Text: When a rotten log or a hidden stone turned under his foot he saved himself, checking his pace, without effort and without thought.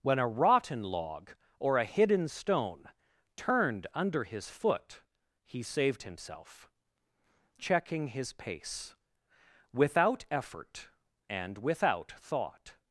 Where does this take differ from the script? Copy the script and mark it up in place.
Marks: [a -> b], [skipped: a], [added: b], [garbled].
When a rotten log or a hidden stone turned under his foot he saved himself, checking his pace, without effort and without thought.